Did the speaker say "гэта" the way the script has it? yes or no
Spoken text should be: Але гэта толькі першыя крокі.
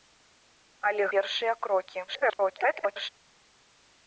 no